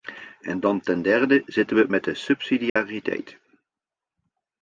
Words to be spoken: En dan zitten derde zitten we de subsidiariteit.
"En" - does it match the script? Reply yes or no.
yes